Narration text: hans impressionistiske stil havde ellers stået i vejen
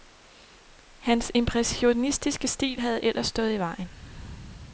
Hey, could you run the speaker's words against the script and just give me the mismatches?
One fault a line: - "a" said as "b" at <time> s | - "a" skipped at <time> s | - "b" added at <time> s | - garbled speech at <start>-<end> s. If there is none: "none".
none